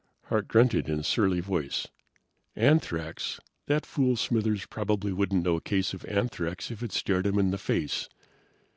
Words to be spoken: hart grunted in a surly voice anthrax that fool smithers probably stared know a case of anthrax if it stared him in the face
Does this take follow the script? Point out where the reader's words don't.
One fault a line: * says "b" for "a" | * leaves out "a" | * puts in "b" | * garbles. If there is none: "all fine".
* says "wouldn't" for "stared"